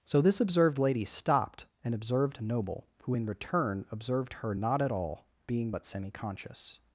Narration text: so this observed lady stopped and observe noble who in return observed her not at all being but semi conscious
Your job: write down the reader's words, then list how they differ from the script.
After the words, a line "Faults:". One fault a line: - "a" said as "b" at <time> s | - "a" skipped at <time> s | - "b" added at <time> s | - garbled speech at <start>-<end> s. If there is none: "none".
so this observed lady stopped and observed noble who in return observed her not at all being but semi conscious
Faults:
- "observe" said as "observed" at 1.9 s